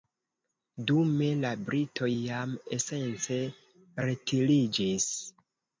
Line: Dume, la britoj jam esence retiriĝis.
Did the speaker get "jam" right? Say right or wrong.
right